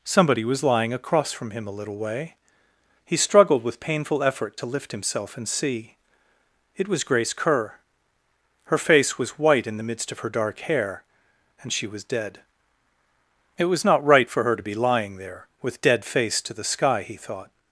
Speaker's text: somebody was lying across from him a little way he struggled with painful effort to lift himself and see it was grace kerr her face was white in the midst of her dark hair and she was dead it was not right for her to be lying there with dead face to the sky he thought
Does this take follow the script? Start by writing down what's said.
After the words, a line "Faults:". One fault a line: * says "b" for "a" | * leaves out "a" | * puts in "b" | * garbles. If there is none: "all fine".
somebody was lying across from him a little way he struggled with painful effort to lift himself and see it was grace kerr her face was white in the midst of her dark hair and she was dead it was not right for her to be lying there with dead face to the sky he thought
Faults:
all fine